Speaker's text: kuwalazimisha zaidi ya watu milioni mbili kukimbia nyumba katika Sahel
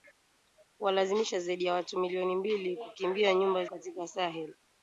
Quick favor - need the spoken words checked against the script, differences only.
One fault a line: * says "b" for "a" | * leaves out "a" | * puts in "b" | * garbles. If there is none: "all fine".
all fine